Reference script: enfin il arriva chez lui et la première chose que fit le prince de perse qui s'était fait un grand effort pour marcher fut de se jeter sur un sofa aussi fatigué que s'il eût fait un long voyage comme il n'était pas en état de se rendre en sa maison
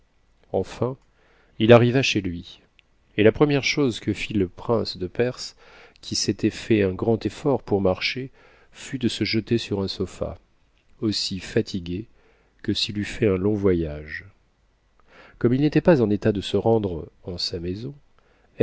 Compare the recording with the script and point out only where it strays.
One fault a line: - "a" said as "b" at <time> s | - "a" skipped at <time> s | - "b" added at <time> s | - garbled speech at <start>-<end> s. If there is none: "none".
none